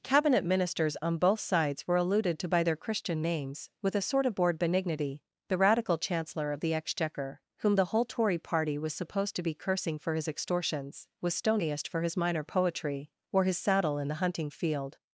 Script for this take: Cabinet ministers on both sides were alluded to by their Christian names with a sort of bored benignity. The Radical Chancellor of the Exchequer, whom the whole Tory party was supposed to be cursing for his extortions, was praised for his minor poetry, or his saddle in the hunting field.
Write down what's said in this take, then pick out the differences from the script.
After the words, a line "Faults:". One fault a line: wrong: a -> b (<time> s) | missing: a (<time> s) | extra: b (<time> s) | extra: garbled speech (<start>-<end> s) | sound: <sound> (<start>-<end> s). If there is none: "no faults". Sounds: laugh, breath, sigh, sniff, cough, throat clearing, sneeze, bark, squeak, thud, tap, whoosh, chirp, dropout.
Cabinet ministers on both sides were alluded to by their Christian names with a sort of bored benignity. The Radical Chancellor of the Exchequer, whom the whole Tory party was supposed to be cursing for his extortions, was stoniest for his minor poetry, or his saddle in the hunting field.
Faults:
wrong: praised -> stoniest (11.3 s)